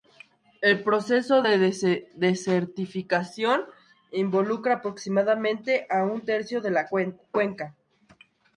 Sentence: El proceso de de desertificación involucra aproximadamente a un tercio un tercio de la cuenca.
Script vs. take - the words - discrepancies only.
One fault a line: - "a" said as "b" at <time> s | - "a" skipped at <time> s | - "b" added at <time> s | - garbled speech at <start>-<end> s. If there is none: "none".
- "de" skipped at 1.6 s
- "un tercio" skipped at 6.6 s